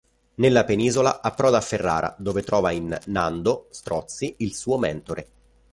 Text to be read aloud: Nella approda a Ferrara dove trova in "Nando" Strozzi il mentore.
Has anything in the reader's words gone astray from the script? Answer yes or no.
yes